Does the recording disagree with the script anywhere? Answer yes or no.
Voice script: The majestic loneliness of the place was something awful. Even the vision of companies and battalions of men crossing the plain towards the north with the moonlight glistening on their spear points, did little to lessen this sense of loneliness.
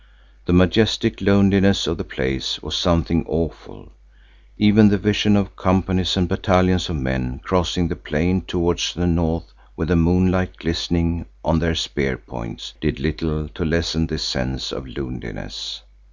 no